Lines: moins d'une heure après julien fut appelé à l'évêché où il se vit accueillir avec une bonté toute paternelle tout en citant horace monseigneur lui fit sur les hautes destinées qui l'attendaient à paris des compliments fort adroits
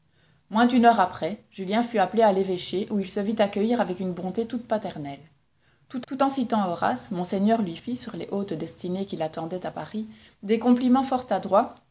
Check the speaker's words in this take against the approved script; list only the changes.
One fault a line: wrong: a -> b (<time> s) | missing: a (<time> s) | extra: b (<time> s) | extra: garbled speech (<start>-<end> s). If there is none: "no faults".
extra: tout (6.1 s)